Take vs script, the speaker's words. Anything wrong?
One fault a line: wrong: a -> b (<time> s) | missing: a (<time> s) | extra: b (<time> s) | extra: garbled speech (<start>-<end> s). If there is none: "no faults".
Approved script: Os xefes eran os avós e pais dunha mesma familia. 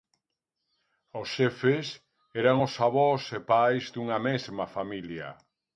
no faults